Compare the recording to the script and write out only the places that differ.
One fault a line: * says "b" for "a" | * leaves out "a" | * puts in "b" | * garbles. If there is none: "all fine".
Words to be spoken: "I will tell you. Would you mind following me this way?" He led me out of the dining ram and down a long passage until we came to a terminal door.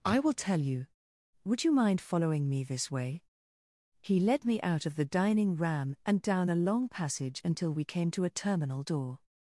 all fine